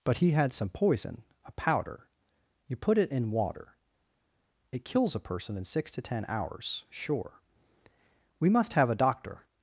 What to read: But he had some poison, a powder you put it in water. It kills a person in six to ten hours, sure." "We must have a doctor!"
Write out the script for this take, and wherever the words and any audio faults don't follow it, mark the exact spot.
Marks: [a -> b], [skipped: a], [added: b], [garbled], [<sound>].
But he had some poison, a powder you put it in water. It kills a person in six to ten hours, sure." "We must have a doctor!"